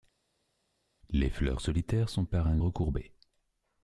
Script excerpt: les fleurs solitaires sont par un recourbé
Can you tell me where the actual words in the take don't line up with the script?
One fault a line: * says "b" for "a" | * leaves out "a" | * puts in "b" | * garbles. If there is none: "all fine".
all fine